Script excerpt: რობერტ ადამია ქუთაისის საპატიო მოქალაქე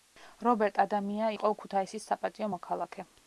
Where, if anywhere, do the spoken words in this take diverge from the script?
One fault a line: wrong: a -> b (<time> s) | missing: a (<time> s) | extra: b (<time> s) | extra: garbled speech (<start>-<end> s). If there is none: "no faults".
extra: იყო (1.3 s)